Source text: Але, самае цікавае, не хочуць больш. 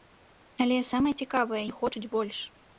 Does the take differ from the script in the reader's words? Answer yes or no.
no